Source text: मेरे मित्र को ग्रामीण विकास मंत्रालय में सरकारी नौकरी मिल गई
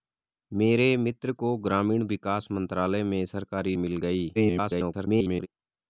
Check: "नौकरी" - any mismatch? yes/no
yes